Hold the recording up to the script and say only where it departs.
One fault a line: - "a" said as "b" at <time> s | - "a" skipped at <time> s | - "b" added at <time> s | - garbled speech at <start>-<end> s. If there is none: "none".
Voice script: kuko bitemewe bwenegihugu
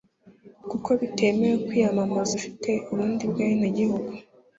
- "kwiyamamaza ufite ubundi" added at 1.6 s